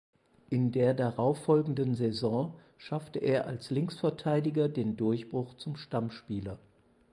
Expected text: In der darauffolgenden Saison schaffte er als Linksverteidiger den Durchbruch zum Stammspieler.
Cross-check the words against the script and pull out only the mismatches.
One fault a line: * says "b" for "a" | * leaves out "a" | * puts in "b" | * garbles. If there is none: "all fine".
all fine